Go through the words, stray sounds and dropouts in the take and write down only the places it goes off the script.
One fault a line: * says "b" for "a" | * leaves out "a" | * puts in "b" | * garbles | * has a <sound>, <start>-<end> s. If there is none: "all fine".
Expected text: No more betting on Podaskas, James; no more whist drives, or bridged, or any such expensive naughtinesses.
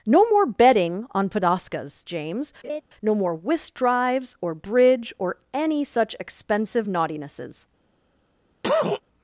* has a laugh, 2.6-2.8 s
* says "bridge" for "bridged"
* has a cough, 8.6-9.0 s